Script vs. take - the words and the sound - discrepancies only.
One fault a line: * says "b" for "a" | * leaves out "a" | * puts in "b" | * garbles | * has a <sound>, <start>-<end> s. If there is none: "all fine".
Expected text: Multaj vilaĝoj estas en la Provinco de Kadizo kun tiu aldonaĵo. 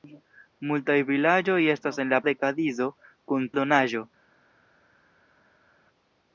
* leaves out "Provinco"
* leaves out "tiu"